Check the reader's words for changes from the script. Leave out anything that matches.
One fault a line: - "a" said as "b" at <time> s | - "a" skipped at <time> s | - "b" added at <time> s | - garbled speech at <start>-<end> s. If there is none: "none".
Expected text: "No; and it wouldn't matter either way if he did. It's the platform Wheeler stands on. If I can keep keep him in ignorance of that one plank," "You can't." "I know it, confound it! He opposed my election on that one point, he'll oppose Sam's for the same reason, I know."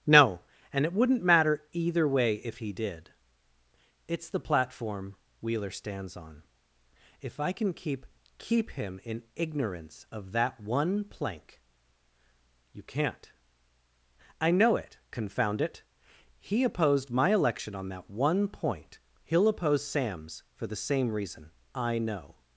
none